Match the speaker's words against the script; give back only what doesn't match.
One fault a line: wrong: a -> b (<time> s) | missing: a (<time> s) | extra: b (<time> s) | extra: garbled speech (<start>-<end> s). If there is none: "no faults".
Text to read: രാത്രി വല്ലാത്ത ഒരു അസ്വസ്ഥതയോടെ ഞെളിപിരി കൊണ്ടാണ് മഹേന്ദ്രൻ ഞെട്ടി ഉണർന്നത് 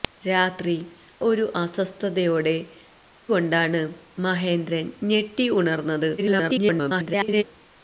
missing: വല്ലാത്ത (0.8 s)
missing: ഞെളിപിരി (2.6 s)
extra: garbled speech (6.2-7.4 s)